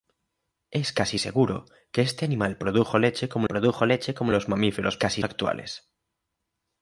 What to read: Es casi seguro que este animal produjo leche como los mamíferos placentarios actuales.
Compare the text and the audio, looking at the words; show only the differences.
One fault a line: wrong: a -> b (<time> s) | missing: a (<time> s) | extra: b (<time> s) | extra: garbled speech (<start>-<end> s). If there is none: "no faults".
extra: produjo leche como (3.5 s)
wrong: placentarios -> casi (5.0 s)